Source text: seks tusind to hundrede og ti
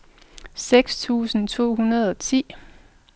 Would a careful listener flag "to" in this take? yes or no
no